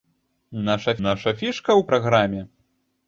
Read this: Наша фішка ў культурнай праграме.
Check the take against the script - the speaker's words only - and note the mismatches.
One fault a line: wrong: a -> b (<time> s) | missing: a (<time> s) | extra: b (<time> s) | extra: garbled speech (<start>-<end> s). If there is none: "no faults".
extra: наша (1.1 s)
missing: культурнай (1.8 s)